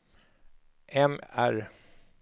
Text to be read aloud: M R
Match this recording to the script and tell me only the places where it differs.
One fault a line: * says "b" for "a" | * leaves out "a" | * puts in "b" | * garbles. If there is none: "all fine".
all fine